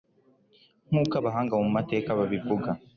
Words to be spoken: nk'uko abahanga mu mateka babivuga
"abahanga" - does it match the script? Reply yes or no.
yes